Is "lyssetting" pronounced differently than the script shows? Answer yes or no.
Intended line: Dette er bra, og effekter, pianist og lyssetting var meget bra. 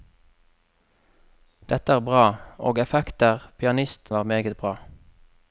yes